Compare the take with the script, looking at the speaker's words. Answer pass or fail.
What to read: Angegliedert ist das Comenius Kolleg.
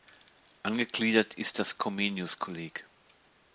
pass